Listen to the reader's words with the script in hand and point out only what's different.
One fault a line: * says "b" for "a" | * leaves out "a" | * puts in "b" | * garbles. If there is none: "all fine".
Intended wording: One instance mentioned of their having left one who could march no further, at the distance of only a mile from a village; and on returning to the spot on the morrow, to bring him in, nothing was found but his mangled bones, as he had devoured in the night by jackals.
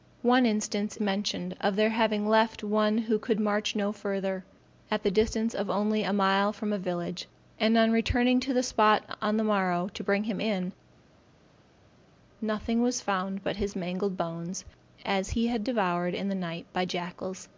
all fine